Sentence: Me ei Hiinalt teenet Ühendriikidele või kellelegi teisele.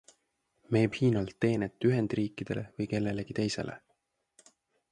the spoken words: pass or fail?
pass